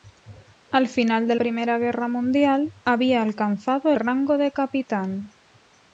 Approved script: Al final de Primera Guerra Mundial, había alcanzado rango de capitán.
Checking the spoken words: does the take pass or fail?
pass